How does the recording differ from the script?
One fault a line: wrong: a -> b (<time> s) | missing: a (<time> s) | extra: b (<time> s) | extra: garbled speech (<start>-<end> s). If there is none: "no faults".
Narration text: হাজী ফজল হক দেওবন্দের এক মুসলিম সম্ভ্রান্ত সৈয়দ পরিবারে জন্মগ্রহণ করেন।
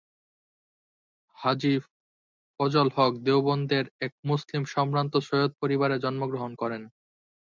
no faults